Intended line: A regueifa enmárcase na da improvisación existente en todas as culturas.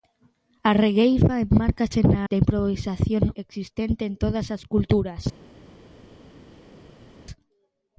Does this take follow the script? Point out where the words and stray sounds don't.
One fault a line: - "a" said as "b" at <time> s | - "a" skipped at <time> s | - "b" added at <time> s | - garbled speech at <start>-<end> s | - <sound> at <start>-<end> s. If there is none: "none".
none